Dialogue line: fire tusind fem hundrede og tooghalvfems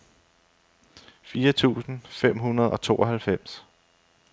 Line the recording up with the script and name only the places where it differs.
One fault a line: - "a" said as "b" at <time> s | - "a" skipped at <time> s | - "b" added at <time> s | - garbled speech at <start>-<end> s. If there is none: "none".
none